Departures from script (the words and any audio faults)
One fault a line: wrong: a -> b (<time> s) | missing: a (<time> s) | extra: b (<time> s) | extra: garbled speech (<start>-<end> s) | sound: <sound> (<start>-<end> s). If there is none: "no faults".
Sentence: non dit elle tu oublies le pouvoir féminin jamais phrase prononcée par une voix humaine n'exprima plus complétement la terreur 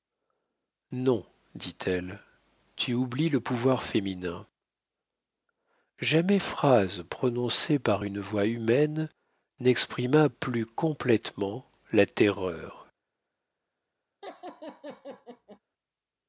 sound: laugh (14.2-15.6 s)